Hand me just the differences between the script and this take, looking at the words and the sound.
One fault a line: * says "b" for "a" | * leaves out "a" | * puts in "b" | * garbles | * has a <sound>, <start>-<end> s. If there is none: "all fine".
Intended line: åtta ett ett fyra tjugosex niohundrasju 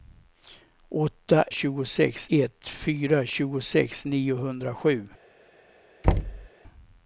* says "tjugosex" for "ett"
* has a thud, 6.0-6.5 s